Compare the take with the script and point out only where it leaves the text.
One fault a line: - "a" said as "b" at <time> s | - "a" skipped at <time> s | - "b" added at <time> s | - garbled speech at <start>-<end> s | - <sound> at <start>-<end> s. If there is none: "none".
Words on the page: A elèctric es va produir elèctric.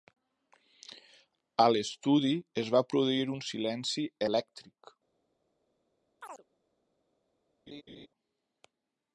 - "elèctric" said as "l'estudi" at 1.7 s
- "un silenci" added at 3.3 s
- chirp at 6.2-6.4 s
- laugh at 7.7-8.1 s